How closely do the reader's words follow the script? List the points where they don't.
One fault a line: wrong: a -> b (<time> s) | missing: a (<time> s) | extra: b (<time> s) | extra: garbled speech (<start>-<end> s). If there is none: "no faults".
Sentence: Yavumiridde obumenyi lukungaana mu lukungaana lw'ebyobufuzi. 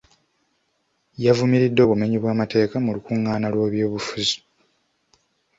wrong: lukungaana -> bw'amateeka (2.2 s)